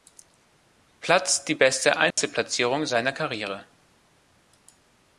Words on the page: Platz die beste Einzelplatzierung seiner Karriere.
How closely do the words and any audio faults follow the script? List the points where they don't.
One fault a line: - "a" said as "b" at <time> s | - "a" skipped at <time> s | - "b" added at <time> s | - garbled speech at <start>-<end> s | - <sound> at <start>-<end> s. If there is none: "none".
- dropout at 2.1-2.2 s